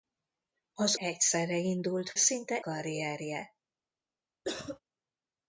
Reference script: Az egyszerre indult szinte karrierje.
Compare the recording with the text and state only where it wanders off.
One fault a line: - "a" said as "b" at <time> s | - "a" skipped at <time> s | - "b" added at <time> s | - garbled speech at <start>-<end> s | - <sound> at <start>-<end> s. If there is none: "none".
- cough at 4.4-4.8 s